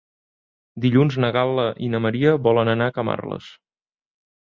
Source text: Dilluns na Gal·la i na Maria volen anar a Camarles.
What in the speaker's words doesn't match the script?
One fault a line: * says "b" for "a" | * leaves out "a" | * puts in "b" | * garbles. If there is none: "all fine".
all fine